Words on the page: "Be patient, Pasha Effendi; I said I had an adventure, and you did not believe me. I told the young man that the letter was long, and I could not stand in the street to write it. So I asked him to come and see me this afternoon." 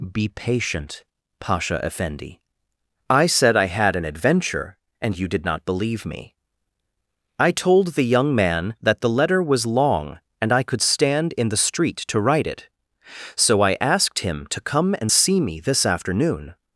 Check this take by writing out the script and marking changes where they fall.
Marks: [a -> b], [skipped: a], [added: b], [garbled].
"Be patient, Pasha Effendi; I said I had an adventure, and you did not believe me. I told the young man that the letter was long, and I could [skipped: not] stand in the street to write it. So I asked him to come and see me this afternoon."